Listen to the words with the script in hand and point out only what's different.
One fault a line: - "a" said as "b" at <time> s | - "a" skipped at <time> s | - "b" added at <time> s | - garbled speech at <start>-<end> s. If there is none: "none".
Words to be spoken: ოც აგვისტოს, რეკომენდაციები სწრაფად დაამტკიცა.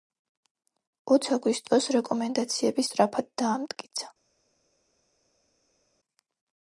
none